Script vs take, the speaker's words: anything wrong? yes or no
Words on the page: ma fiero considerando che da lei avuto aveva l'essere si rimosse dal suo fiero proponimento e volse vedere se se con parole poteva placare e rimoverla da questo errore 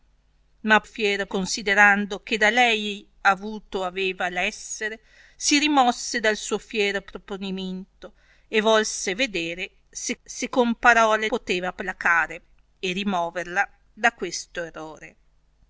no